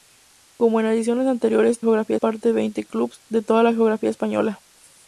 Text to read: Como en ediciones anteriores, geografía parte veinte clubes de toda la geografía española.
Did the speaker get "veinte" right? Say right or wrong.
right